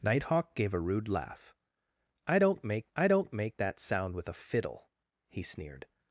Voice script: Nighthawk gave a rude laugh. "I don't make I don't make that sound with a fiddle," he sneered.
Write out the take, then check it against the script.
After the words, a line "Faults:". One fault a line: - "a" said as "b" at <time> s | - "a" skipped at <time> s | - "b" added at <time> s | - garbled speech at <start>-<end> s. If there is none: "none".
Nighthawk gave a rude laugh. "I don't make I don't make that sound with a fiddle," he sneered.
Faults:
none